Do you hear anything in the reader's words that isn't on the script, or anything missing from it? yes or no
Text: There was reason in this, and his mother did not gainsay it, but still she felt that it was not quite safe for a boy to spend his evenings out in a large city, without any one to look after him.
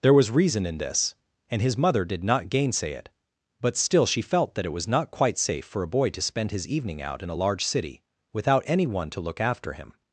yes